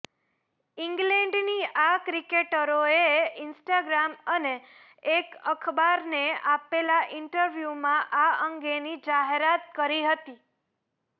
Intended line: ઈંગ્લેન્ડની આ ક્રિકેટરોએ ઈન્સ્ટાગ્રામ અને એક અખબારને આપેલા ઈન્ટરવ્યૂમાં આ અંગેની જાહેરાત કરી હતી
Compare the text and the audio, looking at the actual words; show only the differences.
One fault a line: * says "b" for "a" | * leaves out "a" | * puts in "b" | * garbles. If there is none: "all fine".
all fine